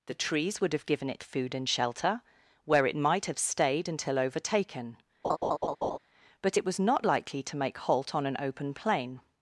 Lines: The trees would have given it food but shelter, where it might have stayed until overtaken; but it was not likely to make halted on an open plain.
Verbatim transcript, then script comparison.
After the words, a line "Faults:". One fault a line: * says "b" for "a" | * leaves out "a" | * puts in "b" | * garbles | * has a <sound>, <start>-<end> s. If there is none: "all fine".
The trees would have given it food and shelter, where it might have stayed until overtaken; but it was not likely to make halt on an open plain.
Faults:
* says "and" for "but"
* has a laugh, 5.2-6.0 s
* says "halt" for "halted"